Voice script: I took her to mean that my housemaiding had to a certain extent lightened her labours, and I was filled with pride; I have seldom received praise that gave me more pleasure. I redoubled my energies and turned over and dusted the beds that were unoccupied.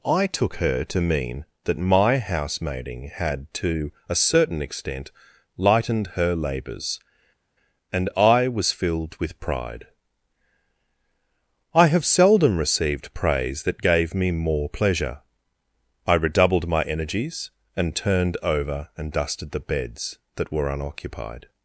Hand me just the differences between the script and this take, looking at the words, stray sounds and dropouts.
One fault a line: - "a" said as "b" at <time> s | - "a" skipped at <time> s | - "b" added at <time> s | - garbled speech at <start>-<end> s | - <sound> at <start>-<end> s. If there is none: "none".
none